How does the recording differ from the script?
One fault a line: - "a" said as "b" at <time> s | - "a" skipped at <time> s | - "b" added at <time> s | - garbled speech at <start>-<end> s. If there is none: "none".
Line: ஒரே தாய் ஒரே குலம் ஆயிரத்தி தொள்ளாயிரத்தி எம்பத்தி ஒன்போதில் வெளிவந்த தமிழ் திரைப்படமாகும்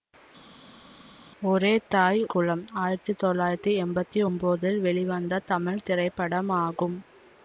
- "ஒரே" skipped at 2.2 s